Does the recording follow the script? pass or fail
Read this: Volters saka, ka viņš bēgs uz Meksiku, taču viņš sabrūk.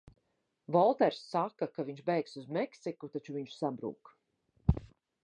pass